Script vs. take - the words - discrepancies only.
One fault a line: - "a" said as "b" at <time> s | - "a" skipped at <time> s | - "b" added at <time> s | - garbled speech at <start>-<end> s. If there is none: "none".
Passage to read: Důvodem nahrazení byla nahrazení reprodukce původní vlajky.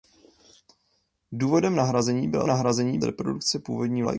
none